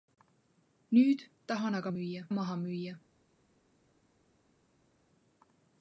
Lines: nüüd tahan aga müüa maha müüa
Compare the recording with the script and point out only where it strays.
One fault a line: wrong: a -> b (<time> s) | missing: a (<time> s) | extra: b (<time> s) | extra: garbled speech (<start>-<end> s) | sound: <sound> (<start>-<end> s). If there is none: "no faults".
no faults